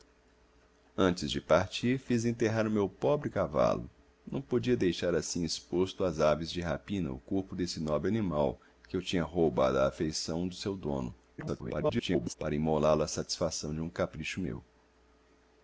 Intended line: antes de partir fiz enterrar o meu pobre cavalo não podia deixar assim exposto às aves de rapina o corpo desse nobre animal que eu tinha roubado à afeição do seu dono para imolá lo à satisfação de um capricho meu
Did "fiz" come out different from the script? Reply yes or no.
no